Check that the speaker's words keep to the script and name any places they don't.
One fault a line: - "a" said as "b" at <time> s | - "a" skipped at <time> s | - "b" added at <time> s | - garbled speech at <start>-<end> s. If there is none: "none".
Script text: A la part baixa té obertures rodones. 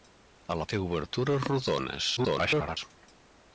- "part baixa" skipped at 0.7 s
- garbled speech at 2.2-2.8 s